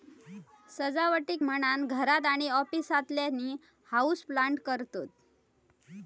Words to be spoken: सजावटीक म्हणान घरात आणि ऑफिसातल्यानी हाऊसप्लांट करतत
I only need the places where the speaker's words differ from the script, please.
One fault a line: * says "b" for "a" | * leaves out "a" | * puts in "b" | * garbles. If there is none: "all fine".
all fine